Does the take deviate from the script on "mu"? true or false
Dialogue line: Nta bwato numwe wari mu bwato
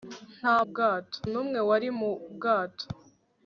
false